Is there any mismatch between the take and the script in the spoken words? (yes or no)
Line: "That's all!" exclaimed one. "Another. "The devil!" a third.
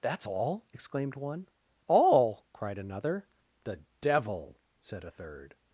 yes